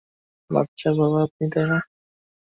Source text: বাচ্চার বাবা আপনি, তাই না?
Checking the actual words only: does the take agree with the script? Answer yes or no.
yes